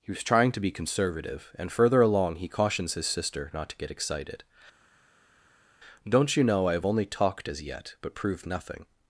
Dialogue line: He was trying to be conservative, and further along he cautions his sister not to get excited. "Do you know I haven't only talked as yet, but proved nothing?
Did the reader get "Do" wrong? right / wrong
wrong